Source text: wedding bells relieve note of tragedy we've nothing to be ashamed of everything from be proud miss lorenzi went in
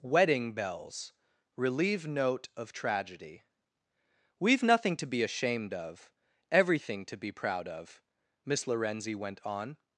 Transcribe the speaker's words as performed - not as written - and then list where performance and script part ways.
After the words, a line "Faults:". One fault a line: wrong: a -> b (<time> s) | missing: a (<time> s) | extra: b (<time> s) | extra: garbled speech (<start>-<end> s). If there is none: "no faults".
wedding bells relieve note of tragedy we've nothing to be ashamed of everything to be proud of miss lorenzi went on
Faults:
wrong: from -> to (7.0 s)
extra: of (7.7 s)
wrong: in -> on (9.4 s)